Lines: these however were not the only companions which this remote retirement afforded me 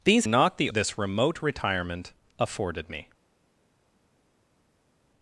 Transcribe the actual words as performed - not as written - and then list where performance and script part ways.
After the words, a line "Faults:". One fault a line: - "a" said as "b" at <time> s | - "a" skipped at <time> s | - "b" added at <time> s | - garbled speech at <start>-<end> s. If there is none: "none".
these not the this remote retirement afforded me
Faults:
- "however were" skipped at 0.2 s
- "only companions which" skipped at 0.7 s